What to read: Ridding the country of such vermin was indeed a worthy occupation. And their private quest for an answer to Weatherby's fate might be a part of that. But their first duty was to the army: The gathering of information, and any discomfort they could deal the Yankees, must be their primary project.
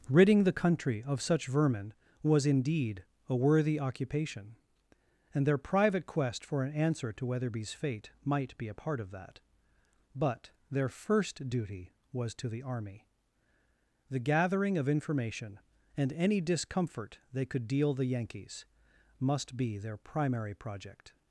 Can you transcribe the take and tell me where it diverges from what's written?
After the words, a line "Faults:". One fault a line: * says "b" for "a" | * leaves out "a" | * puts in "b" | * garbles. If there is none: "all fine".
Ridding the country of such vermin was indeed a worthy occupation. And their private quest for an answer to Weatherby's fate might be a part of that. But their first duty was to the army: The gathering of information, and any discomfort they could deal the Yankees, must be their primary project.
Faults:
all fine